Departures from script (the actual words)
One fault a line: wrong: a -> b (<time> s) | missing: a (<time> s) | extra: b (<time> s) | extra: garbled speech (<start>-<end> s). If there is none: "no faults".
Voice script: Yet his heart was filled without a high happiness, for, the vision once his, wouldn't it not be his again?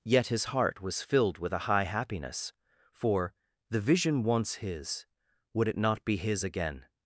wrong: without -> with (1.4 s)
wrong: wouldn't -> would (5.5 s)